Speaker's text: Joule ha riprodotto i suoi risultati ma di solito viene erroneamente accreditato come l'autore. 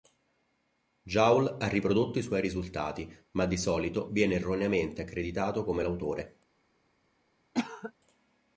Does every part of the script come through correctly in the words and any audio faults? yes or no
no